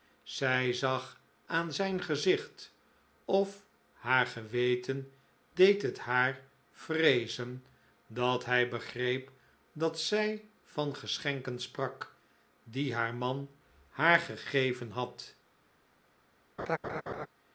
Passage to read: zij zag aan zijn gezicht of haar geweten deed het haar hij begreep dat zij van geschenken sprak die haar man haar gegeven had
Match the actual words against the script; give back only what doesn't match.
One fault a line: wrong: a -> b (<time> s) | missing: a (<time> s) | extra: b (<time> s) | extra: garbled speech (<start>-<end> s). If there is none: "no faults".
extra: vreezen dat (6.7 s)